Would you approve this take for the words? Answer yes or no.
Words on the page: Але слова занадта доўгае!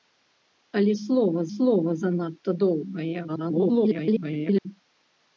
no